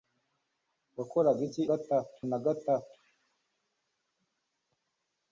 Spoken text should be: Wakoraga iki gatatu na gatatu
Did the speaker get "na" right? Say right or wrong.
right